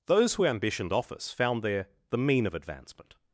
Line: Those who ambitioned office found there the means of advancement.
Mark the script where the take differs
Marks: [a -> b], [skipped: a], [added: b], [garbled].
Those who ambitioned office found there the [means -> mean] of advancement.